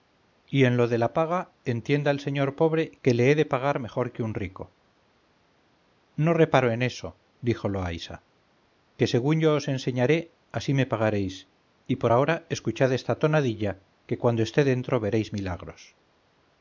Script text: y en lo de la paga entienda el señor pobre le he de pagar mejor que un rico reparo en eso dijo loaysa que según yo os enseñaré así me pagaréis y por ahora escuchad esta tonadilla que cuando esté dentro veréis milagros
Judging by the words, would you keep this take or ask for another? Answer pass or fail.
fail